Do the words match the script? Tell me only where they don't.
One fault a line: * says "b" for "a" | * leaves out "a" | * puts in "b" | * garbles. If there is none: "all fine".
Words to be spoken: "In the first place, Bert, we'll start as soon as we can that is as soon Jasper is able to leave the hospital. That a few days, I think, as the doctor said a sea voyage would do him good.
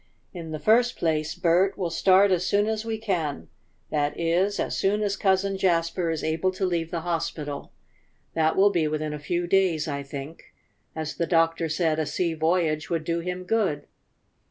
* puts in "as Cousin"
* puts in "will be within"